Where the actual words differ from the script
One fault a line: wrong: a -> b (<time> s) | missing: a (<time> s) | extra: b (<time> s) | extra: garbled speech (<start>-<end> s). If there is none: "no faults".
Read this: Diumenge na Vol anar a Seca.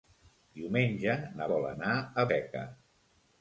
no faults